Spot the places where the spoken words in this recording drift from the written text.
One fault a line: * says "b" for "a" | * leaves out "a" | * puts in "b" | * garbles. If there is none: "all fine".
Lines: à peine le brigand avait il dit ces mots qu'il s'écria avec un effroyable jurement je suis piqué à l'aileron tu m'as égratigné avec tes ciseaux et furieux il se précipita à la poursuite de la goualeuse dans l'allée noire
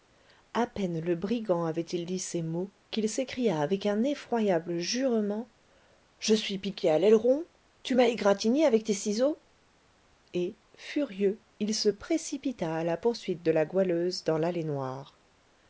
all fine